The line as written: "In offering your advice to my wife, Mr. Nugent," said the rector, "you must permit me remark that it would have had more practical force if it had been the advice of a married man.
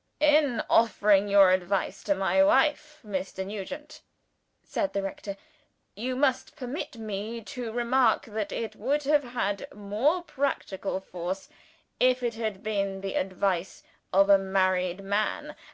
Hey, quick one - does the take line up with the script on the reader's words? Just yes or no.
no